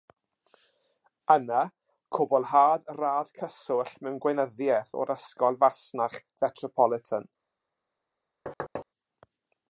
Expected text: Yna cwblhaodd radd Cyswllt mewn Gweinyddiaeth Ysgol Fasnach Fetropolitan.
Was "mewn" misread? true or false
false